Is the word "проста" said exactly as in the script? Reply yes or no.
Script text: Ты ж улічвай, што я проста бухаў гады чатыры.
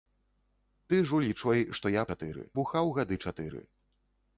no